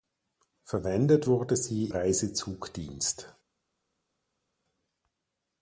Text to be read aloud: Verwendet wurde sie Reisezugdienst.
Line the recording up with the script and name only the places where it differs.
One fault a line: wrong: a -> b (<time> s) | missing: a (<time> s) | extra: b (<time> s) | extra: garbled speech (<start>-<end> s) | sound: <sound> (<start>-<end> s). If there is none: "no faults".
no faults